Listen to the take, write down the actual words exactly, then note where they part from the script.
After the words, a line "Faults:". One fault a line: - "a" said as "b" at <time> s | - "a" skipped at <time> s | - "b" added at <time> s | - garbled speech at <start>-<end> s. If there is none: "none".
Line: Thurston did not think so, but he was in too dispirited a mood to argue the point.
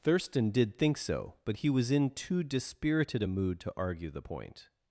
Thurston did think so, but he was in too dispirited a mood to argue the point.
Faults:
- "not" skipped at 0.8 s